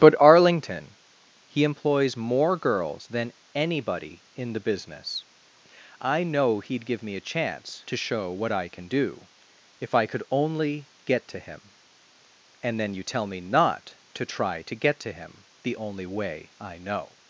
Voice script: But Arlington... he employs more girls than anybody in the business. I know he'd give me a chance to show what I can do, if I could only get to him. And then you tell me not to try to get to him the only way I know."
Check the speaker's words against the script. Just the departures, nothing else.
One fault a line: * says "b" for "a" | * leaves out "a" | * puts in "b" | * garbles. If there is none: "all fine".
all fine